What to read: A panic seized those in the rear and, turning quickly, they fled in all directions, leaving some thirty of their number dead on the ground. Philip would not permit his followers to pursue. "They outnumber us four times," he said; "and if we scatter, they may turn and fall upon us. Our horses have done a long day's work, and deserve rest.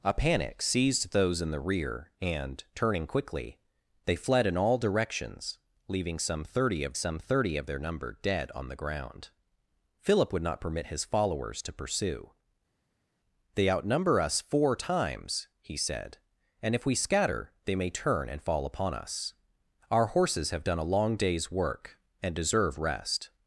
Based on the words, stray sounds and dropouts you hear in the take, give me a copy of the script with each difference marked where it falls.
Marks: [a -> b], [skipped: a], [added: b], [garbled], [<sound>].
A panic seized those in the rear and, turning quickly, they fled in all directions, leaving some thirty of [added: some thirty of] their number dead on the ground. Philip would not permit his followers to pursue. "They outnumber us four times," he said; "and if we scatter, they may turn and fall upon us. Our horses have done a long day's work, and deserve rest.